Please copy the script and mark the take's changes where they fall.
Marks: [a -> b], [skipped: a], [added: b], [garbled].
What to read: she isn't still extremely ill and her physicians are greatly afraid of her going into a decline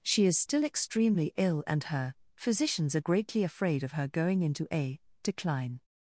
she [isn't -> is] still extremely ill and her physicians are greatly afraid of her going into a decline